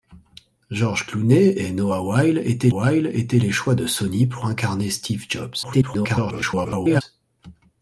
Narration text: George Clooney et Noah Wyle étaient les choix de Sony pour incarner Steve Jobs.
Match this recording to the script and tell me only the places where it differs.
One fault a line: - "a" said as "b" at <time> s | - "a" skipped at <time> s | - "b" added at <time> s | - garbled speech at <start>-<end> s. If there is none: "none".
- "Wyle étaient" added at 2.7 s
- garbled speech at 5.6-7.0 s